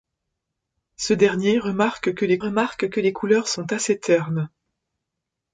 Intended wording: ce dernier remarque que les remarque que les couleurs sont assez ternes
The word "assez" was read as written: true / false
true